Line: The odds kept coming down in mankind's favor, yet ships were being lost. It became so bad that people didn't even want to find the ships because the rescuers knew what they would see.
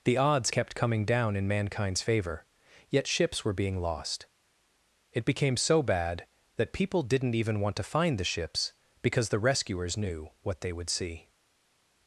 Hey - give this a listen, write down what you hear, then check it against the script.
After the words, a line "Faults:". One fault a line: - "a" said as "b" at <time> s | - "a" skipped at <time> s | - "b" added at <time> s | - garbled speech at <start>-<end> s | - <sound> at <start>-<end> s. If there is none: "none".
The odds kept coming down in mankind's favor, yet ships were being lost. It became so bad that people didn't even want to find the ships because the rescuers knew what they would see.
Faults:
none